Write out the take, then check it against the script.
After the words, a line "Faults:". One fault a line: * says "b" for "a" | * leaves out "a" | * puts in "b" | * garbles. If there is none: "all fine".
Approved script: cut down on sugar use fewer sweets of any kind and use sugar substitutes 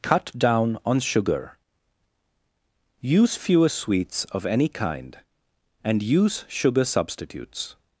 cut down on sugar use fewer sweets of any kind and use sugar substitutes
Faults:
all fine